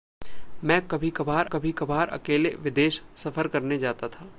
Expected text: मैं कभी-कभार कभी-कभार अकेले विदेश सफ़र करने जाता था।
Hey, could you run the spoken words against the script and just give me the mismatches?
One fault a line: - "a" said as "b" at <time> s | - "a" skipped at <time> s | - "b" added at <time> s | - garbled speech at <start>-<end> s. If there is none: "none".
none